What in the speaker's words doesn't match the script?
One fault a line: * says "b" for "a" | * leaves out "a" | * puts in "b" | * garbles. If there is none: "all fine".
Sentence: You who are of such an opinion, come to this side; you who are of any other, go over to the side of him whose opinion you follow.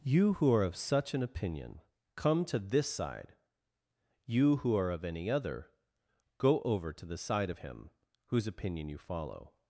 all fine